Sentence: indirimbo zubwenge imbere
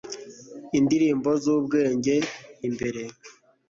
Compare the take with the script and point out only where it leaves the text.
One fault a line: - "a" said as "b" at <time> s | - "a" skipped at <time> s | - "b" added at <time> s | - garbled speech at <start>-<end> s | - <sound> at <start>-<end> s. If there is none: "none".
none